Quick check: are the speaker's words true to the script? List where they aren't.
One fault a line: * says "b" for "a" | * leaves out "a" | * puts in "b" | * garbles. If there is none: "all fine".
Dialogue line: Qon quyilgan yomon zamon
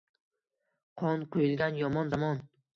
all fine